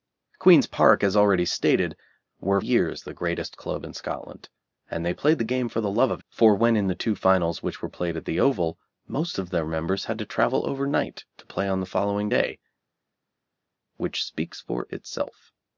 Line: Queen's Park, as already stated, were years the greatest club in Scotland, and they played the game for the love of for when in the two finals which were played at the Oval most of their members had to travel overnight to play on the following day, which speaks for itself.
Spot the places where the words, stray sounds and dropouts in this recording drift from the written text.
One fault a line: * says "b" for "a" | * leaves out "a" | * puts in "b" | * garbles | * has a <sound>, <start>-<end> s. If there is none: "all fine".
all fine